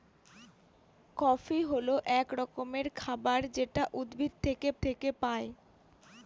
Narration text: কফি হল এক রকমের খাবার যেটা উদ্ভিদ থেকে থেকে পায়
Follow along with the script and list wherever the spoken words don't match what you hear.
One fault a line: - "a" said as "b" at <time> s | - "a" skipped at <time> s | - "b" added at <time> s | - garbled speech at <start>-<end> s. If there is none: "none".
none